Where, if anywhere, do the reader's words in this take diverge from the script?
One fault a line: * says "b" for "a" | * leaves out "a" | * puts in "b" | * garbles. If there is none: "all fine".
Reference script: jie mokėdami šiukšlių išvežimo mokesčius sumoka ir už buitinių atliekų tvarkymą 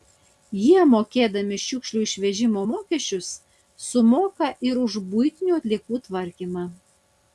all fine